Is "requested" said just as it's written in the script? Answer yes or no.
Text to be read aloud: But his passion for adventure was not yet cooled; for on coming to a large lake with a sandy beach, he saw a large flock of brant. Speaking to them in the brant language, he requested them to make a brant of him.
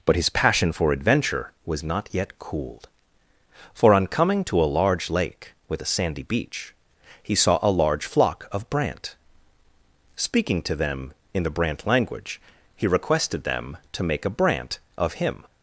yes